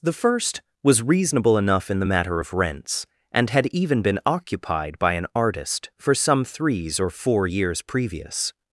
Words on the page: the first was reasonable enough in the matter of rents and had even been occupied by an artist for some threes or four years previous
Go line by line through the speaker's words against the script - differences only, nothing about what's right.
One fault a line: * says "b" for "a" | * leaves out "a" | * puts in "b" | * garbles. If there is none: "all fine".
all fine